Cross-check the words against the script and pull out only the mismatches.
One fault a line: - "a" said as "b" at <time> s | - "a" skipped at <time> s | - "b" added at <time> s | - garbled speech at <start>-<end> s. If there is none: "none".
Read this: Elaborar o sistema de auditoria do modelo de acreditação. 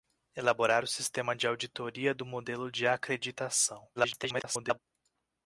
- garbled speech at 4.0-4.8 s